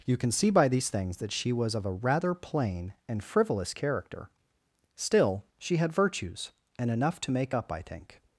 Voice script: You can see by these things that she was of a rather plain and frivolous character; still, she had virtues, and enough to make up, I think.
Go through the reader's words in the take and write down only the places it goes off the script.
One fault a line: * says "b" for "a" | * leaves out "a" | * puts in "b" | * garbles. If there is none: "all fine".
all fine